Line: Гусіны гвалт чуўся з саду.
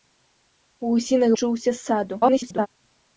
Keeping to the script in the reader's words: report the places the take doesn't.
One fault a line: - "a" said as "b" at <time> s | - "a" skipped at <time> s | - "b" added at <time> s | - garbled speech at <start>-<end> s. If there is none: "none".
- "гвалт" skipped at 1.3 s
- garbled speech at 2.2-2.7 s